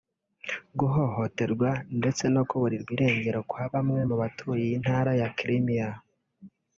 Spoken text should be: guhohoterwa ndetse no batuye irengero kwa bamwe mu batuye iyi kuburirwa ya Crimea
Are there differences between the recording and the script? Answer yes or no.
yes